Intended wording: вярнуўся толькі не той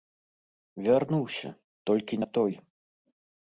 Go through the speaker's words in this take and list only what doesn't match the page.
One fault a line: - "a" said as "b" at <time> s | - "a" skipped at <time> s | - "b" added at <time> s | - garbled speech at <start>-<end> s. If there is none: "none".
none